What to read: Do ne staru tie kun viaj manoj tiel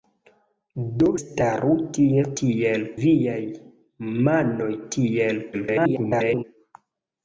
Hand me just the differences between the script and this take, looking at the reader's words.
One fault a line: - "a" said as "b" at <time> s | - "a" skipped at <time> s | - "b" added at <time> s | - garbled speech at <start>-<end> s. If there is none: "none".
- "ne" skipped at 1.1 s
- "kun" said as "tiel" at 2.4 s
- garbled speech at 5.5-6.4 s